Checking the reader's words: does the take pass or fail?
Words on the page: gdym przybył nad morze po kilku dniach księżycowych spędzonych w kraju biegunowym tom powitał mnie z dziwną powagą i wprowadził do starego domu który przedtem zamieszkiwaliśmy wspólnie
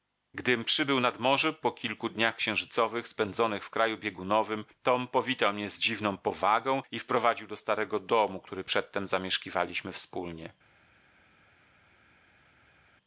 pass